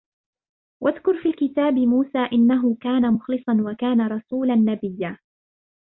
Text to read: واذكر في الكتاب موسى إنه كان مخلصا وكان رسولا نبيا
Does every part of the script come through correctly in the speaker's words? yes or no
yes